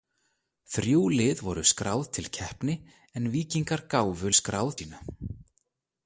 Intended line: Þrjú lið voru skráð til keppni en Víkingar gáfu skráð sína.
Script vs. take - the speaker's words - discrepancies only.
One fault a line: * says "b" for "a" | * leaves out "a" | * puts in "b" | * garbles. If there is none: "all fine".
all fine